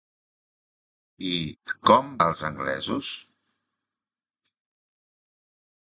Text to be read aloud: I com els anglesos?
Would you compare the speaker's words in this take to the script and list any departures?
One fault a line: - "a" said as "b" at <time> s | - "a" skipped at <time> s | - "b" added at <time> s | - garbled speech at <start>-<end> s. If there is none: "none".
none